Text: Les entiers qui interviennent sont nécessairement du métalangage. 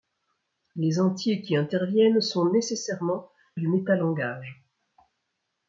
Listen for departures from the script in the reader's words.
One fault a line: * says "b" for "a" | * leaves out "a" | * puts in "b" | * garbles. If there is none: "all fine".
all fine